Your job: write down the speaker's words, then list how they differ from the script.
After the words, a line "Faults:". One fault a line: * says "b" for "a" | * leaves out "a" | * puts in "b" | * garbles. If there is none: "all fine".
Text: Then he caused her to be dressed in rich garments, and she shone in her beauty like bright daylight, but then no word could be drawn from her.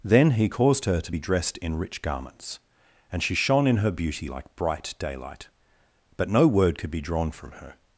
Then he caused her to be dressed in rich garments, and she shone in her beauty like bright daylight, but no word could be drawn from her.
Faults:
* leaves out "then"